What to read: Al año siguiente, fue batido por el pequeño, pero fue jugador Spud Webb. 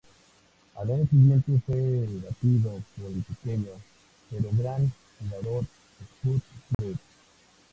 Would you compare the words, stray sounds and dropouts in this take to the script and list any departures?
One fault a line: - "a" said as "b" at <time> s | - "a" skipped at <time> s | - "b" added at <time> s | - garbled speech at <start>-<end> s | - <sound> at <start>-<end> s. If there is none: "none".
- "fue" said as "gran" at 4.5 s
- dropout at 6.7-6.8 s